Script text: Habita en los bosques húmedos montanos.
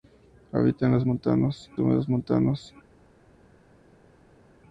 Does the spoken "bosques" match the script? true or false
false